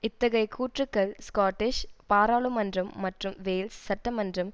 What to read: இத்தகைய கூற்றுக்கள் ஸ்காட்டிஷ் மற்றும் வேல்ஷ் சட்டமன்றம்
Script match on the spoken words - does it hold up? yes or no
no